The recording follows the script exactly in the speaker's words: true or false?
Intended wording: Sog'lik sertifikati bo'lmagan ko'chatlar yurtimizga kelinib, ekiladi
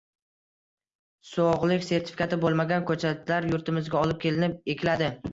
false